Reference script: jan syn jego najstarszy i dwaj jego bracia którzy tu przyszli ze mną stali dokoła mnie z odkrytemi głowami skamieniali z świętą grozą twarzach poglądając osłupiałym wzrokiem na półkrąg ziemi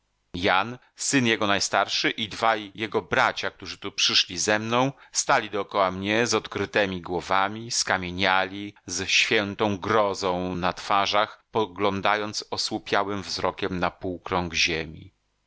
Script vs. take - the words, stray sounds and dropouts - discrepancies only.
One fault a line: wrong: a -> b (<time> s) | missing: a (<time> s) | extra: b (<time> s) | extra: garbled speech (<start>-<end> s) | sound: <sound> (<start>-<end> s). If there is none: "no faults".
extra: na (10.5 s)